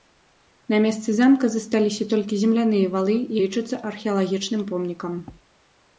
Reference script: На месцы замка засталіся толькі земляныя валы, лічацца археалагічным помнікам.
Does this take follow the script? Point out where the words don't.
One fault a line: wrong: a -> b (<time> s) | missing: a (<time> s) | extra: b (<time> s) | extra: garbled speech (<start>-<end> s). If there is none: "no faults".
no faults